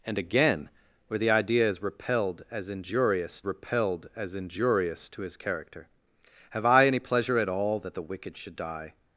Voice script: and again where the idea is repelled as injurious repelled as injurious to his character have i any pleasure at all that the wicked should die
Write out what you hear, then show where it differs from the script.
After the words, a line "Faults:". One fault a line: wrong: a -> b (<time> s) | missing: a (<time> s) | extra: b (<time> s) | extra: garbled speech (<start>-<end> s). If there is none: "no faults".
and again where the idea is repelled as injurious repelled as injurious to his character have i any pleasure at all that the wicked should die
Faults:
no faults